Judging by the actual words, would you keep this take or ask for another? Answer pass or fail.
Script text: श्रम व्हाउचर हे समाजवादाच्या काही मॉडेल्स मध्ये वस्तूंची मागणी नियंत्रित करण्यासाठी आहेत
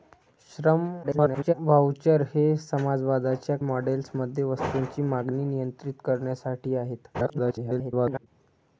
fail